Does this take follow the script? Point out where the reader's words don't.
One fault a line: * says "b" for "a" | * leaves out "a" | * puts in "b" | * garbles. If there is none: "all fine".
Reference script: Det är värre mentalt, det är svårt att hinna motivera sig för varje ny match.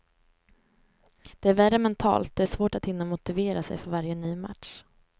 all fine